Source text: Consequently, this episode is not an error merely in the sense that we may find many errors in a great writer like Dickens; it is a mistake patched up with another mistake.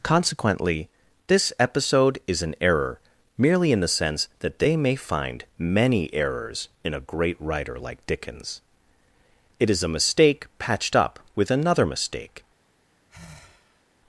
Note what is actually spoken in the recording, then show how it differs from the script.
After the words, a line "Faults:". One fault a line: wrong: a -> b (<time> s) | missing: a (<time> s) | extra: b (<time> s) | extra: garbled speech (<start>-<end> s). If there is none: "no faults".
Consequently, this episode is an error merely in the sense that they may find many errors in a great writer like Dickens; it is a mistake patched up with another mistake.
Faults:
missing: not (2.4 s)
wrong: we -> they (4.6 s)